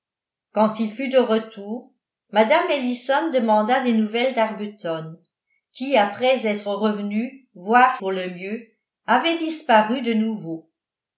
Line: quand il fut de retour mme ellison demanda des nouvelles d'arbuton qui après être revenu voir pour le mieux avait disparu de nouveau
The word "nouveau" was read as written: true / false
true